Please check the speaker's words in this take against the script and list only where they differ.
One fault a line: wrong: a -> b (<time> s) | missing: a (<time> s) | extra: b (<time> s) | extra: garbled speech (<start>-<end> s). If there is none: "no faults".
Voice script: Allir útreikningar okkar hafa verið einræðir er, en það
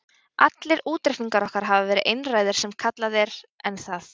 extra: sem kallað (2.6 s)